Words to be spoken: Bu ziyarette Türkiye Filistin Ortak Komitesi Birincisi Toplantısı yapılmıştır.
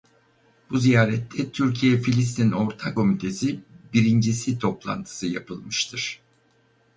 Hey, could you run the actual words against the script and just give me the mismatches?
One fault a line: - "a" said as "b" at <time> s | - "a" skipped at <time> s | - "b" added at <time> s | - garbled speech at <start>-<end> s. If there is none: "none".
none